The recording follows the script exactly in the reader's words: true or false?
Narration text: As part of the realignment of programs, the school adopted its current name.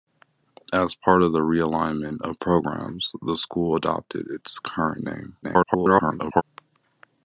false